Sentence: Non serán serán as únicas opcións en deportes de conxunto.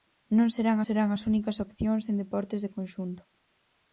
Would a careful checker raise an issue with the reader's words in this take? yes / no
no